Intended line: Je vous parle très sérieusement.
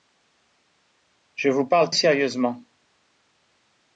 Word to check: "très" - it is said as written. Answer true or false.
false